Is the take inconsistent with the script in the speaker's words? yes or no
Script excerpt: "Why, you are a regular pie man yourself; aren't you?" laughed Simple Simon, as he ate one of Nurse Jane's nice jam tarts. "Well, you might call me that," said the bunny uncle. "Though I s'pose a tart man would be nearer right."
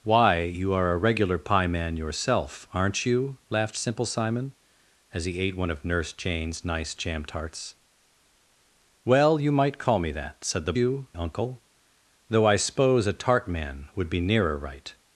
yes